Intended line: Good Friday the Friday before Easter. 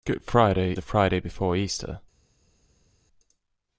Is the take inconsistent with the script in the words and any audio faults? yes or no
no